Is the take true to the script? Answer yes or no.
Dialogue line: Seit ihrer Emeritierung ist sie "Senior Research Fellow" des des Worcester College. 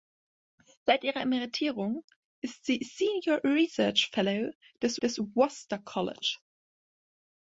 yes